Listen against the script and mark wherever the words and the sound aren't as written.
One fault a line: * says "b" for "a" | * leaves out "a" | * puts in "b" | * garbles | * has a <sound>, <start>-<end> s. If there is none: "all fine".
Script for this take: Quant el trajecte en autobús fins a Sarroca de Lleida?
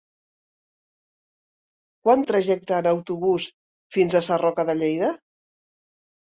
all fine